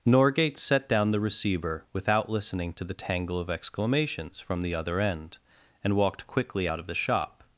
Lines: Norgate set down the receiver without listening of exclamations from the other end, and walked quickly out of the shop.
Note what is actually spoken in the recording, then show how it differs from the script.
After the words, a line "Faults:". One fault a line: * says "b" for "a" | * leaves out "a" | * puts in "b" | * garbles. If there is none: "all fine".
Norgate set down the receiver without listening to the tangle of exclamations from the other end, and walked quickly out of the shop.
Faults:
* puts in "to the tangle"